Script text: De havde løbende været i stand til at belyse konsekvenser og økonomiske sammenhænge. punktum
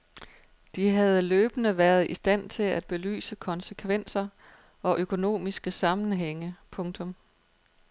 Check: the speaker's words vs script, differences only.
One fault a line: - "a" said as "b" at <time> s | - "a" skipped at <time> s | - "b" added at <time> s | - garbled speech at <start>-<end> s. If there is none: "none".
none